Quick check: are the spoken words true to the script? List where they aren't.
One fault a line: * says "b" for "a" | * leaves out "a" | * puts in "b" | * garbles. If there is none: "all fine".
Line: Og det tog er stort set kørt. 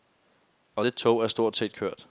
all fine